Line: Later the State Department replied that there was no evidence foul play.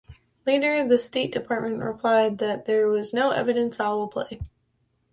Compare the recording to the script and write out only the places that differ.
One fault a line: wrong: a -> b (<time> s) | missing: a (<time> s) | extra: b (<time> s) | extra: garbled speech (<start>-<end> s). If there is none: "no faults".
no faults